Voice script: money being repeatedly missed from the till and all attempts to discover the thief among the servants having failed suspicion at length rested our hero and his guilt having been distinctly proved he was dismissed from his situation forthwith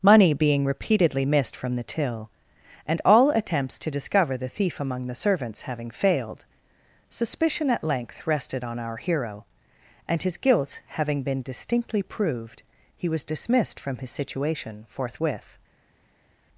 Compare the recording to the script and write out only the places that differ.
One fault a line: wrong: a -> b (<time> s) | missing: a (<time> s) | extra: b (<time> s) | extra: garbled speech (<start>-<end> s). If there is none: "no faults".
extra: on (8.6 s)